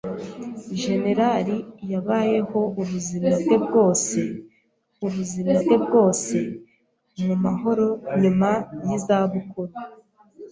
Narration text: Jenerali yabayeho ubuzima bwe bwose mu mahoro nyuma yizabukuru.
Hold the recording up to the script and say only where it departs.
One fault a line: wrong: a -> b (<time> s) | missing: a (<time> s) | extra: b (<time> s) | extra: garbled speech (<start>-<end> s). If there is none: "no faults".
extra: ubuzima bwe bwose (5.1 s)